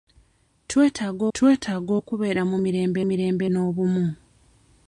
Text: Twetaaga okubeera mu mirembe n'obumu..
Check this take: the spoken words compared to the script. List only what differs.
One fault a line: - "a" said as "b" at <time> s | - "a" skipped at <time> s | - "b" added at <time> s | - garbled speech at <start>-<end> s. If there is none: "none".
- "twetaaga" added at 1.3 s
- "mirembe" added at 3.1 s